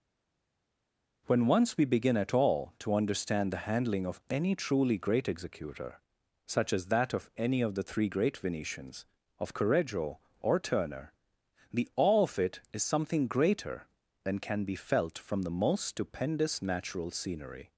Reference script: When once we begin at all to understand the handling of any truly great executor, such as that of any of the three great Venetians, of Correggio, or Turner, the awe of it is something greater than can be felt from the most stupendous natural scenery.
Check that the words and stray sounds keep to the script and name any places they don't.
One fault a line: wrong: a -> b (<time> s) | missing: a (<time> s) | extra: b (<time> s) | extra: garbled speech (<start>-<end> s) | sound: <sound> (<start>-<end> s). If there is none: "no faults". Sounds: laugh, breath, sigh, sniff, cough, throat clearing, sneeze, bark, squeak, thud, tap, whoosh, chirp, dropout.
no faults